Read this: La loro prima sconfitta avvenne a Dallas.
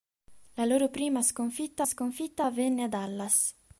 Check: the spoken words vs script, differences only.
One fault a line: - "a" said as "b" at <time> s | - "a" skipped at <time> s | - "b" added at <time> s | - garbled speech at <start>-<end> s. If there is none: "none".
- "sconfitta" added at 1.8 s